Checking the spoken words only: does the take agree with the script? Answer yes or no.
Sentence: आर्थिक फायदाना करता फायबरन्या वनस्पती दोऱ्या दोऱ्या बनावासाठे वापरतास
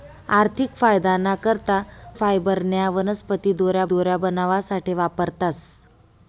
yes